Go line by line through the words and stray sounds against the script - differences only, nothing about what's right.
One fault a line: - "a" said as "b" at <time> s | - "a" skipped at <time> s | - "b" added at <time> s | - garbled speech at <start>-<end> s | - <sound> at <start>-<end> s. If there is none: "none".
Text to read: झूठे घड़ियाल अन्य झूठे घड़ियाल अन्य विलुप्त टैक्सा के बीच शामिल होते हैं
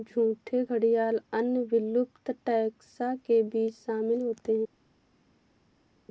- "झूठे घड़ियाल अन्य" skipped at 1.6 s